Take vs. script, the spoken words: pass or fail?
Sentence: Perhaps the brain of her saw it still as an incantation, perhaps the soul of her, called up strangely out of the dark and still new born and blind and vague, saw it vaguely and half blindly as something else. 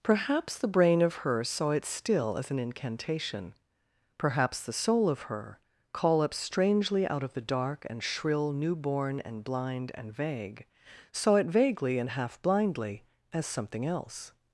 fail